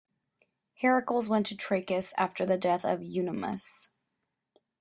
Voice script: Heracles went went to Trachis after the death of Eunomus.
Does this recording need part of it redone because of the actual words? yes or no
yes